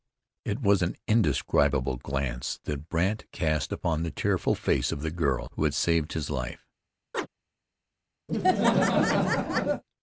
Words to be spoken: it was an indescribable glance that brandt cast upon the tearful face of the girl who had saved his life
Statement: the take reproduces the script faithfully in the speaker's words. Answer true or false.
true